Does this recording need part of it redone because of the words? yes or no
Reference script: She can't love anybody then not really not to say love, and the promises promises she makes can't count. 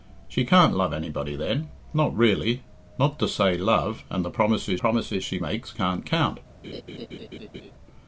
no